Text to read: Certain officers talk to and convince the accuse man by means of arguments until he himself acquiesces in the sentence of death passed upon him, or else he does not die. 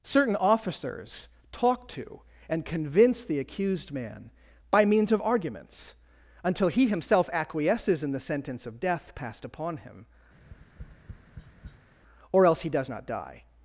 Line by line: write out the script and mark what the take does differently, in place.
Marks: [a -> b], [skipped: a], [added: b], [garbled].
Certain officers talk to and convince the [accuse -> accused] man by means of arguments until he himself acquiesces in the sentence of death passed upon him, or else he does not die.